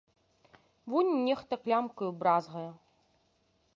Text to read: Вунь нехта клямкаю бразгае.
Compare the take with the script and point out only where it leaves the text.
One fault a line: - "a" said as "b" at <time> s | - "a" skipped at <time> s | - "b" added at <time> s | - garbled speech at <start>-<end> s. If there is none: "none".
none